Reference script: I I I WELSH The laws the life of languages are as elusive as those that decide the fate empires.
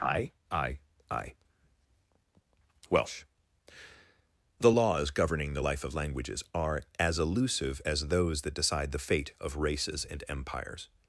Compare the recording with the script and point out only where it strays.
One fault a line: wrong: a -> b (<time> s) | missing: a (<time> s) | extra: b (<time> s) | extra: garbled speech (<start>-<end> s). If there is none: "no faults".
extra: governing (5.1 s)
extra: of races and (9.4 s)